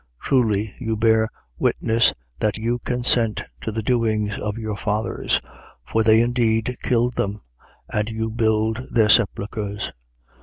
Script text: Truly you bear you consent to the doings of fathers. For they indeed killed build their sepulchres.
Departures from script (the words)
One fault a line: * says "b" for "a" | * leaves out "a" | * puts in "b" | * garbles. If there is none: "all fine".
* puts in "witness that"
* puts in "your"
* puts in "them and you"